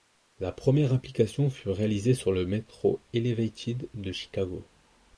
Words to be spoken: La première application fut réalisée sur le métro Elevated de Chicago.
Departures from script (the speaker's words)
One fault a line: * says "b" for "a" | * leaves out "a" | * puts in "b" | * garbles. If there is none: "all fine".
all fine